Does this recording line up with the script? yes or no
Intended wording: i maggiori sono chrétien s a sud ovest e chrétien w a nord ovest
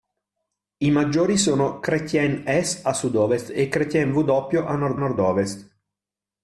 no